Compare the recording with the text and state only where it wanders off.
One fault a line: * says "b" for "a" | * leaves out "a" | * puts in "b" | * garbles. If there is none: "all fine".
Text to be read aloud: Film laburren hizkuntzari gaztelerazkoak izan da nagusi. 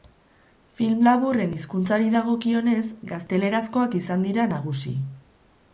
* puts in "dagokionez"
* says "dira" for "da"